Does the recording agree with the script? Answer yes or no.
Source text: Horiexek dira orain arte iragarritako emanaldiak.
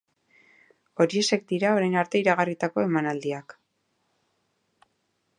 yes